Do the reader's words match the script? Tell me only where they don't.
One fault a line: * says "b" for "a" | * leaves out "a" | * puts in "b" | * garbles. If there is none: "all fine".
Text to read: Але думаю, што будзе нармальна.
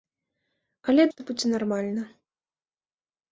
* leaves out "думаю"